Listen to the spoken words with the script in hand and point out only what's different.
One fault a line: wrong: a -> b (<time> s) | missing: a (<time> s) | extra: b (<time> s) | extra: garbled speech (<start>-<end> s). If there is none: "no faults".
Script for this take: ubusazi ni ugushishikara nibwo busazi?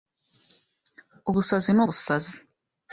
missing: ugushishikara nibwo (1.8 s)